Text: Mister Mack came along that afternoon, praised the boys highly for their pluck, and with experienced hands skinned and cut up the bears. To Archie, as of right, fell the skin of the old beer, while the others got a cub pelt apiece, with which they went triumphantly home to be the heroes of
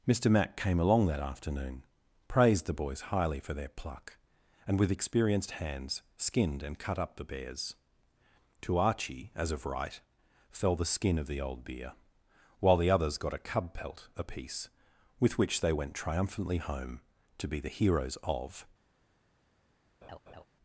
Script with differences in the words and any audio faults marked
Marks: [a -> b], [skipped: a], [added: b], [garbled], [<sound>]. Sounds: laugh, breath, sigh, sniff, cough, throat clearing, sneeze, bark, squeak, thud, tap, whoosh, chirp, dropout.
Mister Mack came along that afternoon, praised the boys highly for their pluck, and with experienced hands skinned and cut up the bears. To Archie, as of right, fell the skin of the old beer, while the others got a cub pelt apiece, with which they went triumphantly home to be the heroes of [laugh]